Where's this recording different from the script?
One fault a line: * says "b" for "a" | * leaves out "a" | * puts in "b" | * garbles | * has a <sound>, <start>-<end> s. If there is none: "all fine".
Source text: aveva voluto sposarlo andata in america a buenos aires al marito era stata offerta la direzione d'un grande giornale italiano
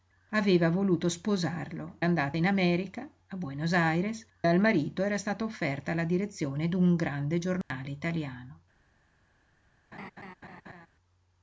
* has a dropout, 7.6-7.7 s
* has a laugh, 9.9-10.9 s